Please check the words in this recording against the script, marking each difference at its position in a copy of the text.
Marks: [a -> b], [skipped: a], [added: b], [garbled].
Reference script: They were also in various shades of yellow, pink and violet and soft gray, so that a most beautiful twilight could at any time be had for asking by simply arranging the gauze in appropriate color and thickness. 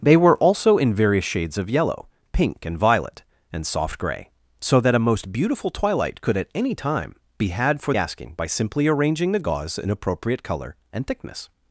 They were also in various shades of yellow, pink and violet and soft gray, so that a most beautiful twilight could at any time be had for asking by simply arranging the gauze in appropriate color and thickness.